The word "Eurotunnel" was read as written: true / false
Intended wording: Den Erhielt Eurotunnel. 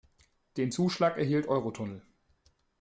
true